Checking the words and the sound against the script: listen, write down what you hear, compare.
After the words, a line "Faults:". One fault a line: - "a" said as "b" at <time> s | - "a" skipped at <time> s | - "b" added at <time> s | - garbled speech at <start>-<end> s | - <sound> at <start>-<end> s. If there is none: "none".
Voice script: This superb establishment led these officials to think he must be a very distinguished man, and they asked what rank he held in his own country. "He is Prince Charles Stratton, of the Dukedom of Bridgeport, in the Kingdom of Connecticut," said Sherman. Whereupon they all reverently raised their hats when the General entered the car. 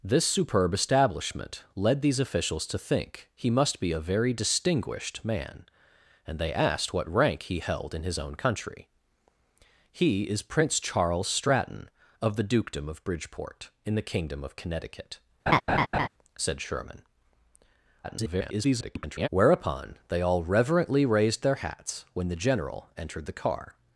This superb establishment led these officials to think he must be a very distinguished man, and they asked what rank he held in his own country. "He is Prince Charles Stratton, of the Dukedom of Bridgeport, in the Kingdom of Connecticut," said Sherman. [garbled] Whereupon they all reverently raised their hats when the General entered the car.
Faults:
- laugh at 15.5-16.1 s
- garbled speech at 18.0-19.3 s